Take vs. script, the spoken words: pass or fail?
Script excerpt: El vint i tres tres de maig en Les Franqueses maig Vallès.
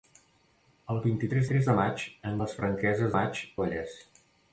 pass